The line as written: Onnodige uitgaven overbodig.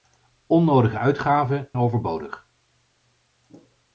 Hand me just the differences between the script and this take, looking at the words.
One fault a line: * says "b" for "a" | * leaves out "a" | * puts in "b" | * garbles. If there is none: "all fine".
all fine